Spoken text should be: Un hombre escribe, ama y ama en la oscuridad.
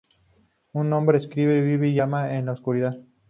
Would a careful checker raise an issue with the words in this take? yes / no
yes